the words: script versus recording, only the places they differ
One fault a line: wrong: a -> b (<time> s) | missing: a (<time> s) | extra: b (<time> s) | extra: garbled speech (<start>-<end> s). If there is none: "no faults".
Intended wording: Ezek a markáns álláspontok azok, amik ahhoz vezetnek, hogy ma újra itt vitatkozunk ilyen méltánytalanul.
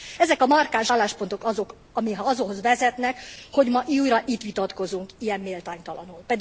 no faults